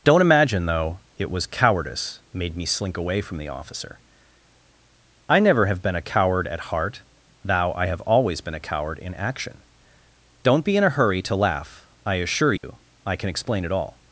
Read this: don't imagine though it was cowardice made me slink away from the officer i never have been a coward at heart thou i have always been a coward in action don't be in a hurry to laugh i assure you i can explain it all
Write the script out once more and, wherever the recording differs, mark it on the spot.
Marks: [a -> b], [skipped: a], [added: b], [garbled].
don't imagine though it was cowardice made me slink away from the officer i never have been a coward at heart thou i have always been a coward in action don't be in a hurry to laugh i assure you i can explain it all